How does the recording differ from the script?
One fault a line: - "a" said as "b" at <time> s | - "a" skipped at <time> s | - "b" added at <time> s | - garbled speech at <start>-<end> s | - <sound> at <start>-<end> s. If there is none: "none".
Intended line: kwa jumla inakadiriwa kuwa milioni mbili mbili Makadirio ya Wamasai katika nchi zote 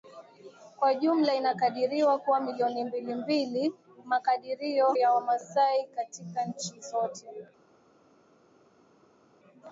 none